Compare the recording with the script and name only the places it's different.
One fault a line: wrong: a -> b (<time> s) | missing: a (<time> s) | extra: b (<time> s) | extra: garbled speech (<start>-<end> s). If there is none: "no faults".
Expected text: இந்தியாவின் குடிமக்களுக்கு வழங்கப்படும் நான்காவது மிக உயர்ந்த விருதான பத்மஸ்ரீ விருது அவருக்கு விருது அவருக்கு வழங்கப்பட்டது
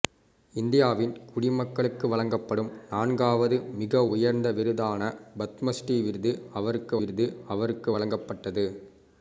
no faults